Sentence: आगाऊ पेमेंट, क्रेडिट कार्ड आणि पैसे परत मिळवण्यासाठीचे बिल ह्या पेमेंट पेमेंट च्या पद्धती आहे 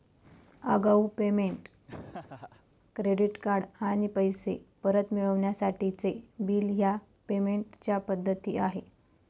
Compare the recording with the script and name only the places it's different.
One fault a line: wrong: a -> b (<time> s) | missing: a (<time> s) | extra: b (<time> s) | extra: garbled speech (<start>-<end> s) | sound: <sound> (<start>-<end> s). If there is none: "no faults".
sound: laugh (1.9-2.7 s)
missing: पेमेंट (7.8 s)